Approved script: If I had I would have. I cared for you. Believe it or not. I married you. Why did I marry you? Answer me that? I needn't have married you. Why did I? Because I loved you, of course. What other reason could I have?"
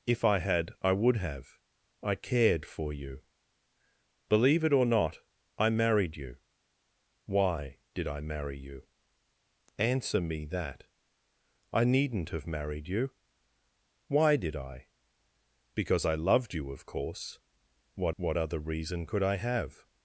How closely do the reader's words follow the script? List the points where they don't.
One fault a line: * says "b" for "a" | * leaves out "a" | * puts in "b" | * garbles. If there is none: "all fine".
* puts in "what"